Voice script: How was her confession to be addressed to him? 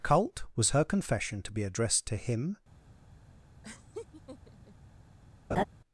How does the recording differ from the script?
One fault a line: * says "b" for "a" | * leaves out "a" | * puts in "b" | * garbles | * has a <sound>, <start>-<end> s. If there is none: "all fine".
* says "Cult" for "How"
* has a laugh, 3.6-4.8 s
* has a laugh, 5.5-5.6 s